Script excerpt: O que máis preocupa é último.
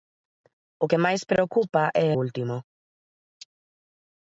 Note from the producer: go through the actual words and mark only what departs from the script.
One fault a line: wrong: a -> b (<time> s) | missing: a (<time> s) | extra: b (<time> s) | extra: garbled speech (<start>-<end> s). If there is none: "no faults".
no faults